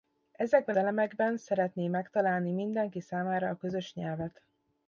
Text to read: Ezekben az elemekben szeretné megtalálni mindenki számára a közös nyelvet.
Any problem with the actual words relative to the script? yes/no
yes